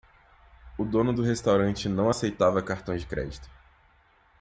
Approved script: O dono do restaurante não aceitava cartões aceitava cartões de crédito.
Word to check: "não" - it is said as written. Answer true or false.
true